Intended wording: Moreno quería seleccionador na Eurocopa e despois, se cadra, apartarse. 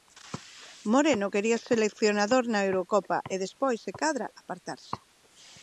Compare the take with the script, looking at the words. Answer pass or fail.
pass